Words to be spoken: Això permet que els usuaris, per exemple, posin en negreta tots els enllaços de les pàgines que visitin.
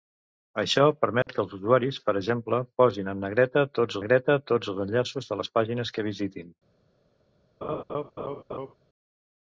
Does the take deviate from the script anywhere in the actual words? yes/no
yes